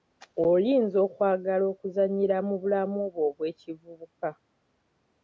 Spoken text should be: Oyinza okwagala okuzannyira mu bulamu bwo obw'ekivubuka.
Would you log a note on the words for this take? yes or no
no